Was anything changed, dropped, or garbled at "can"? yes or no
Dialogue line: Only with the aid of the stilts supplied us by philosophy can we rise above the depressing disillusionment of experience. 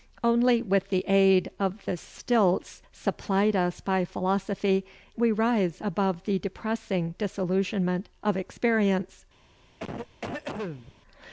yes